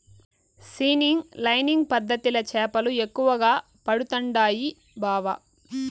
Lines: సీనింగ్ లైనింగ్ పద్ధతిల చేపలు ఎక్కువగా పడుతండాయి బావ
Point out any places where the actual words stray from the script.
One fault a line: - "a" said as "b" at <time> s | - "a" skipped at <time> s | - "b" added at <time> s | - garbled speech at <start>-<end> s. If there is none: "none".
none